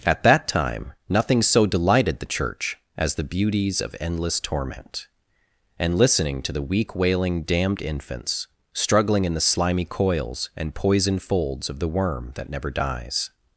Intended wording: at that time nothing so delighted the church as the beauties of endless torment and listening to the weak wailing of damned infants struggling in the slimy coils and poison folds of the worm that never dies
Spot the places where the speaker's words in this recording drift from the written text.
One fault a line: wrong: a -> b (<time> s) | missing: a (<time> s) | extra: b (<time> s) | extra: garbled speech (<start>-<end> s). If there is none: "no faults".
missing: of (7.4 s)